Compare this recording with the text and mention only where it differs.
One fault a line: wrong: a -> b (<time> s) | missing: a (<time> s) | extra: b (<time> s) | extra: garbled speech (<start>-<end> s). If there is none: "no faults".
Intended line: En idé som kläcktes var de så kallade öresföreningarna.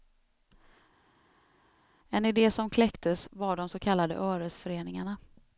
no faults